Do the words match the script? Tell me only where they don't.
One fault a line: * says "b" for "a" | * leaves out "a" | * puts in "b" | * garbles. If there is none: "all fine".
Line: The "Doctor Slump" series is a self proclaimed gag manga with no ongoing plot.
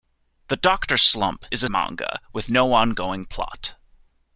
* leaves out "series"
* leaves out "self proclaimed gag"